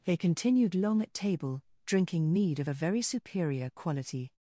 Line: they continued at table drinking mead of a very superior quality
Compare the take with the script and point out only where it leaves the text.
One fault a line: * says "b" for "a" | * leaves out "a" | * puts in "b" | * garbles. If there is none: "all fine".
* puts in "long"